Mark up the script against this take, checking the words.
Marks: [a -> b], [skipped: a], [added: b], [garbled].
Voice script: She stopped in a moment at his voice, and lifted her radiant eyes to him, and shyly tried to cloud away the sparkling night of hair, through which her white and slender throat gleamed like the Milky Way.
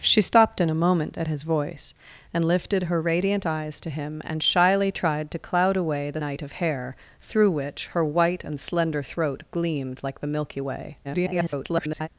She stopped in a moment at his voice, and lifted her radiant eyes to him, and shyly tried to cloud away the [skipped: sparkling] night of hair, through which her white and slender throat gleamed like the Milky Way. [garbled]